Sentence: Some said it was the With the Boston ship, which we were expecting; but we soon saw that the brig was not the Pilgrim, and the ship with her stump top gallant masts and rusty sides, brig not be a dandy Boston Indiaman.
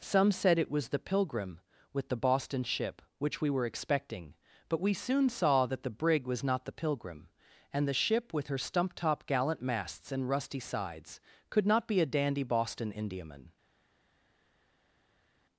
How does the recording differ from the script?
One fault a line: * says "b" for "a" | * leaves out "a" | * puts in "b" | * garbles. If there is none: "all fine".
* puts in "Pilgrim"
* says "could" for "brig"